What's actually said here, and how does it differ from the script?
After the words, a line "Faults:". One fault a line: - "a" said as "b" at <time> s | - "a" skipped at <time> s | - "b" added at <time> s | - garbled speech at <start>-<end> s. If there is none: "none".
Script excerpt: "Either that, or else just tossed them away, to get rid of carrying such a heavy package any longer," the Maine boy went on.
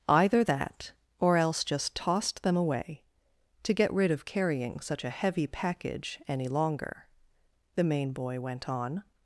"Either that, or else just tossed them away, to get rid of carrying such a heavy package any longer," the Maine boy went on.
Faults:
none